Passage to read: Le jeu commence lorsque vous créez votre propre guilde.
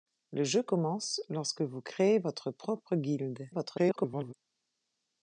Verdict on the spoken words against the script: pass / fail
fail